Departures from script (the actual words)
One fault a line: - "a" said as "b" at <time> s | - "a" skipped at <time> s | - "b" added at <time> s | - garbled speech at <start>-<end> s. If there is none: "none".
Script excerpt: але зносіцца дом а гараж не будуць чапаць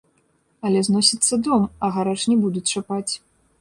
none